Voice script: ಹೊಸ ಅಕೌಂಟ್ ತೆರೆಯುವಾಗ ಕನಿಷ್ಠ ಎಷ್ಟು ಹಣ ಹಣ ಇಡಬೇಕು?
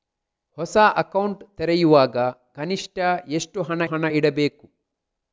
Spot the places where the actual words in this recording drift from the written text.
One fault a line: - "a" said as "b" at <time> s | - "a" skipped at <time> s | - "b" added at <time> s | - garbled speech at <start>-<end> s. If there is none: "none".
none